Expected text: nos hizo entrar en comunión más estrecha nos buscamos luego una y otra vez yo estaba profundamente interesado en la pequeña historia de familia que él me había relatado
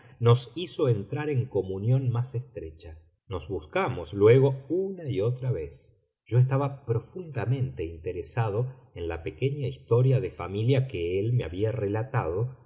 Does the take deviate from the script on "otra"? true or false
false